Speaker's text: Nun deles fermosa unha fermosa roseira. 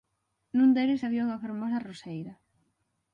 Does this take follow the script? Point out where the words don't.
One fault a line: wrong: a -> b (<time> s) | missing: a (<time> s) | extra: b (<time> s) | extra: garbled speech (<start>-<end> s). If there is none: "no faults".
wrong: fermosa -> había (1.0 s)